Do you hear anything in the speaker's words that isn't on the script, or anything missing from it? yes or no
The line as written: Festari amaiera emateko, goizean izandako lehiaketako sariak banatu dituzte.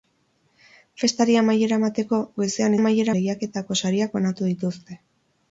yes